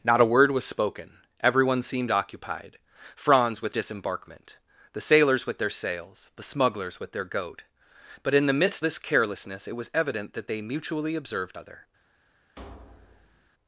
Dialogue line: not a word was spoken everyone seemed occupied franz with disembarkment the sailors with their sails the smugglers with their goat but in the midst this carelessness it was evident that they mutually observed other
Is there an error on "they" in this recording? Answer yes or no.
no